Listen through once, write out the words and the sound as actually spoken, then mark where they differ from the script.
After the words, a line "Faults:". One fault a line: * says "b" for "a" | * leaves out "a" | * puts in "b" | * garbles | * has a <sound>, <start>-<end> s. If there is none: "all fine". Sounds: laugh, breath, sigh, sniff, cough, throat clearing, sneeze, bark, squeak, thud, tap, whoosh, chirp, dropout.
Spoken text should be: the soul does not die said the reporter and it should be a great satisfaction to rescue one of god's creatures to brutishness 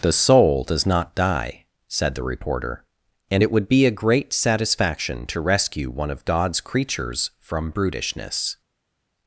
the soul does not die said the reporter and it would be a great satisfaction to rescue one of god's creatures from brutishness
Faults:
* says "would" for "should"
* says "from" for "to"